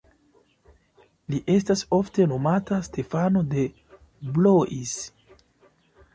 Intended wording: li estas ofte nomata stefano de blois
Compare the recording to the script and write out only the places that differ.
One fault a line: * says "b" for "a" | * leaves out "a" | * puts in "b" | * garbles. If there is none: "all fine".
all fine